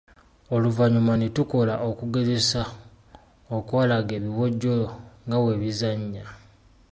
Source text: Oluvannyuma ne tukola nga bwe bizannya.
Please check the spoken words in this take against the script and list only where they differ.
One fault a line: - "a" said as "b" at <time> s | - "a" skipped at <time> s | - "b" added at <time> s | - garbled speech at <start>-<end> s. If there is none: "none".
- "okugezesa okwalaga ebiwojjolo" added at 1.9 s